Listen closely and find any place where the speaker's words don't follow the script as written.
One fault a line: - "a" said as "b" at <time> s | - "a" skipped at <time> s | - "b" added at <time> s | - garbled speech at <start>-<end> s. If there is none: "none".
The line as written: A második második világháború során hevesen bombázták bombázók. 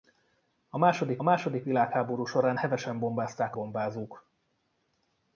none